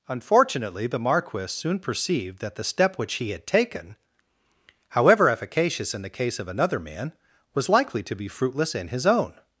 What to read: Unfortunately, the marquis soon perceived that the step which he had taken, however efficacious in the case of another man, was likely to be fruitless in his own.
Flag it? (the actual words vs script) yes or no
no